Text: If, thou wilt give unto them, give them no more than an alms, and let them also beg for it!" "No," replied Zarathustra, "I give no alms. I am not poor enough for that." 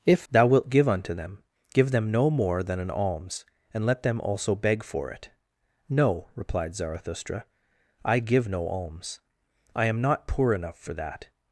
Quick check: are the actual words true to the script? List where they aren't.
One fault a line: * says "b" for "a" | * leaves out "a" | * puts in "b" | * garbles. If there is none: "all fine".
all fine